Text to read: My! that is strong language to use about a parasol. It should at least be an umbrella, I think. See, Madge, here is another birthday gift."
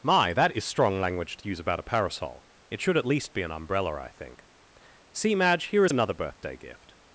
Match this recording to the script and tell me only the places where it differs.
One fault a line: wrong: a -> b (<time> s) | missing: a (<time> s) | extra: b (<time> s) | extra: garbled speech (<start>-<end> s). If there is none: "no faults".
no faults